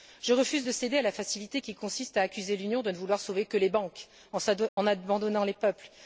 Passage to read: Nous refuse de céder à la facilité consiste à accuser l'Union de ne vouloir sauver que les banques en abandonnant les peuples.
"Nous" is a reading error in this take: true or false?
true